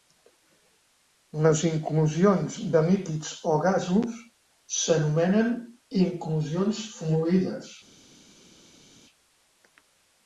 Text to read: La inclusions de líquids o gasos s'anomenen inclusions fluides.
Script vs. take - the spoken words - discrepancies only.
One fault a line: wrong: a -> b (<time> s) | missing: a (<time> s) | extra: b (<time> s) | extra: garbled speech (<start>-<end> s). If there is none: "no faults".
wrong: La -> Les (1.4 s)